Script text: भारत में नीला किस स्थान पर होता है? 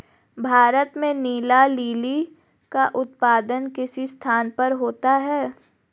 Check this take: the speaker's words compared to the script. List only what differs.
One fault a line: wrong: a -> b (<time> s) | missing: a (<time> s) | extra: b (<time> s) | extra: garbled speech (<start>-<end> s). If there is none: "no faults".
extra: लिली का उत्पादन (1.7 s)